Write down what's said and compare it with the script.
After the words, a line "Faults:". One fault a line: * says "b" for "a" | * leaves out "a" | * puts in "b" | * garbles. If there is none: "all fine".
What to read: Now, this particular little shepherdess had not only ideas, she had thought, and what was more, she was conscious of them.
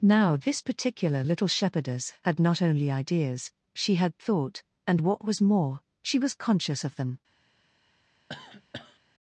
Now, this particular little shepherdess had not only ideas, she had thought, and what was more, she was conscious of them.
Faults:
all fine